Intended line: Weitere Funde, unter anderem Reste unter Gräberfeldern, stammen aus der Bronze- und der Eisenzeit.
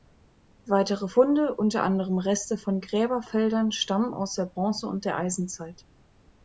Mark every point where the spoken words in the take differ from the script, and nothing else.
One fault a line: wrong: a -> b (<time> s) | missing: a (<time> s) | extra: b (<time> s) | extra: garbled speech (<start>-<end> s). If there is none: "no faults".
wrong: unter -> von (2.6 s)